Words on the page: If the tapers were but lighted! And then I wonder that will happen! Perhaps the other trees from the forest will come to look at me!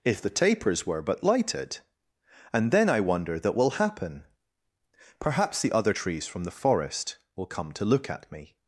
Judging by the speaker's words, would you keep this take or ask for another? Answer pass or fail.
pass